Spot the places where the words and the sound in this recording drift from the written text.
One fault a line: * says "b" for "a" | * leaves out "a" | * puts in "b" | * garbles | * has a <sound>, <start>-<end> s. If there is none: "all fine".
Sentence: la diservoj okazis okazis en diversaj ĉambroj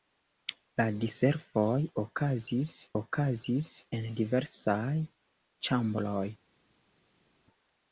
all fine